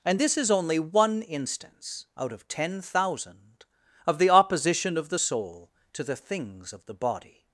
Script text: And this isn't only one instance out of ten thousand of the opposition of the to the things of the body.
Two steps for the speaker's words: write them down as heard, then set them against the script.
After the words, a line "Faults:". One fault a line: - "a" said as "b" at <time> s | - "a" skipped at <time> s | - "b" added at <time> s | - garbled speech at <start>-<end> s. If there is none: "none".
And this is only one instance out of ten thousand of the opposition of the soul to the things of the body.
Faults:
- "isn't" said as "is" at 0.4 s
- "soul" added at 5.2 s